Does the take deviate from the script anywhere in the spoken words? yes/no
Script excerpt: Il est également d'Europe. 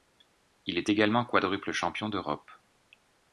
yes